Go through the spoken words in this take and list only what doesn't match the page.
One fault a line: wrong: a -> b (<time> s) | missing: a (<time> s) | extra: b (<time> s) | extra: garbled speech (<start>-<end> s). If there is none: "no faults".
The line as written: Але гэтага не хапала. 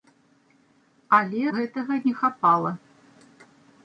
no faults